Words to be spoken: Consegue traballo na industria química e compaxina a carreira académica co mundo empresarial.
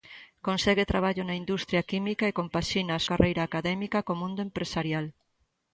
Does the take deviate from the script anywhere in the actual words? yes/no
no